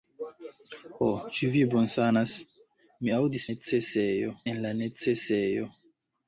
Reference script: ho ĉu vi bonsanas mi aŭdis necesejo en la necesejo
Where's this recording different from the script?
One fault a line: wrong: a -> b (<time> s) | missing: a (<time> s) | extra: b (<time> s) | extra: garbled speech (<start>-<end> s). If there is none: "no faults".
no faults